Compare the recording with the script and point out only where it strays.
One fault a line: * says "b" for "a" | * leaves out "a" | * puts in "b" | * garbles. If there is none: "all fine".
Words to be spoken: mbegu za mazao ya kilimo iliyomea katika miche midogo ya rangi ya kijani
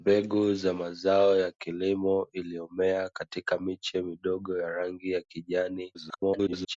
* garbles